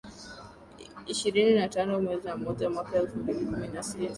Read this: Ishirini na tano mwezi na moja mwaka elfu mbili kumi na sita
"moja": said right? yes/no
yes